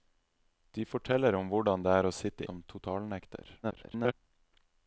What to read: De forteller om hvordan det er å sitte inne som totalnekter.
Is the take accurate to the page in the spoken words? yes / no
no